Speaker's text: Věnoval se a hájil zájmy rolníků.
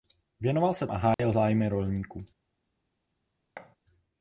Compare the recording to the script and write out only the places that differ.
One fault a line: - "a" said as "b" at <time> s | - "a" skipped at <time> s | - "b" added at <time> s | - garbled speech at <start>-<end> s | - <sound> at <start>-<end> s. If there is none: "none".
- dropout at 1.1-1.2 s
- thud at 3.6-3.8 s